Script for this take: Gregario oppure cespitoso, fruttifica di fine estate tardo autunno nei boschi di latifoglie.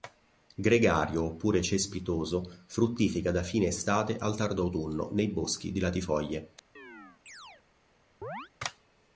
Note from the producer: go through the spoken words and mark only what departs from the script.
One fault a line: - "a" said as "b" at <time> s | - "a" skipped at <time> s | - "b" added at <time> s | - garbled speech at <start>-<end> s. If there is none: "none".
- "di" said as "da" at 3.3 s
- "al" added at 4.2 s